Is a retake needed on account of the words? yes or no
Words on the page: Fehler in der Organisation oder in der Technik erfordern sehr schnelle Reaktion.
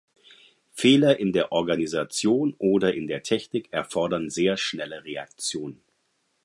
no